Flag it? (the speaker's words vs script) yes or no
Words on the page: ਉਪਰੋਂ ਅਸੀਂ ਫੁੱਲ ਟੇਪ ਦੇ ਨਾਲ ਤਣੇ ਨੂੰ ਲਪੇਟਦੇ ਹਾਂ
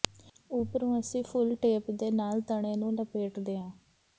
no